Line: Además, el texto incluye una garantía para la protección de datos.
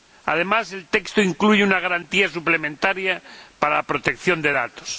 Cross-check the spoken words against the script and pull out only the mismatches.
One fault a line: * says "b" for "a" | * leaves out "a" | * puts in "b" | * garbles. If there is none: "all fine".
* puts in "suplementaria"